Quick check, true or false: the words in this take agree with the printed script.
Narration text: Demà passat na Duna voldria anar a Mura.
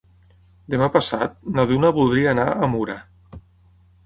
true